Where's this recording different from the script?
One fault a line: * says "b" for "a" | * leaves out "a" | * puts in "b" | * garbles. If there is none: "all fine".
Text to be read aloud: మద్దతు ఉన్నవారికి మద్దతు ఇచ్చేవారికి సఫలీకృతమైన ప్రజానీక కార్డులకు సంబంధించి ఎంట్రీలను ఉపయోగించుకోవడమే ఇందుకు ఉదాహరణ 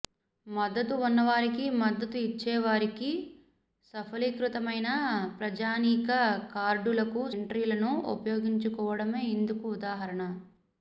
* leaves out "సంబంధించి"